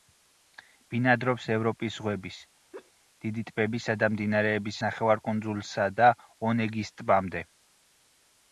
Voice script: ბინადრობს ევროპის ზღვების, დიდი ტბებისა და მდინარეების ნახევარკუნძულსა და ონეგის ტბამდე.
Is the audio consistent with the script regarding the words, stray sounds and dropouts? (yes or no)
no